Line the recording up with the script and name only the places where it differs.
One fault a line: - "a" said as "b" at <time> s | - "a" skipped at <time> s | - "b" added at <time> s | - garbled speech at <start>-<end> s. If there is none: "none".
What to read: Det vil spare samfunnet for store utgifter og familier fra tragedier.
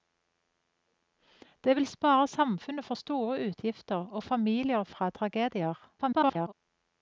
- garbled speech at 6.0-6.5 s